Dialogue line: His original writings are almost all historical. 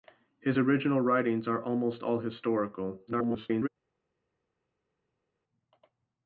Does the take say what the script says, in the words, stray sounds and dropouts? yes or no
no